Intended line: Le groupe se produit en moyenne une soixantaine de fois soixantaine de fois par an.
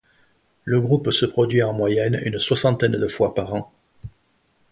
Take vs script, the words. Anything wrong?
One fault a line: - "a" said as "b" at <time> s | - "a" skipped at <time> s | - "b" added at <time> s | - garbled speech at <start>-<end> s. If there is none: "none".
- "soixantaine de fois" skipped at 3.3 s